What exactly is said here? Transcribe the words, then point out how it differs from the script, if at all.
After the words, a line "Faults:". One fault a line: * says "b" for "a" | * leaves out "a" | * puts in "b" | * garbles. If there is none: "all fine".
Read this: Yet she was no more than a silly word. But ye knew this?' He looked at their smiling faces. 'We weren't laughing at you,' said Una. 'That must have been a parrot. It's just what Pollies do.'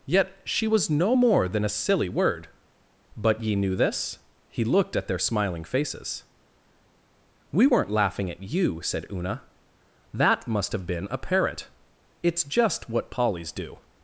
Yet she was no more than a silly word. But ye knew this?' He looked at their smiling faces. 'We weren't laughing at you,' said Una. 'That must have been a parrot. It's just what Pollies do.'
Faults:
all fine